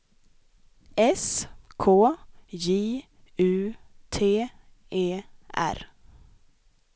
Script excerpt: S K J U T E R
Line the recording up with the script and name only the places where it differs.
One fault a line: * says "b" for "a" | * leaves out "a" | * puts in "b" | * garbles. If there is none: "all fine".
all fine